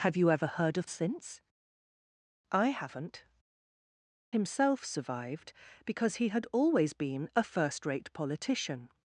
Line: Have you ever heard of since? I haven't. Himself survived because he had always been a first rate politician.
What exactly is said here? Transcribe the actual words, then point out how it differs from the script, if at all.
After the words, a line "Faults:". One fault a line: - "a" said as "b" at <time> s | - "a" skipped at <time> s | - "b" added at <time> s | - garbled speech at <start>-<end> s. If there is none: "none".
Have you ever heard of since? I haven't. Himself survived because he had always been a first rate politician.
Faults:
none